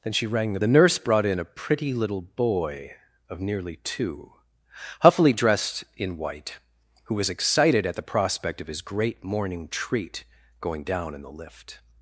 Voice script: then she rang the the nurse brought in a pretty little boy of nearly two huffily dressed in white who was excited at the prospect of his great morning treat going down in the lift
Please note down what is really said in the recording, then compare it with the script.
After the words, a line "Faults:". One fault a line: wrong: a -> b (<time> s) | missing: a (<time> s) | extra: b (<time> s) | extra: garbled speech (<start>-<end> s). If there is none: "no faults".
then she rang the the nurse brought in a pretty little boy of nearly two huffily dressed in white who was excited at the prospect of his great morning treat going down in the lift
Faults:
no faults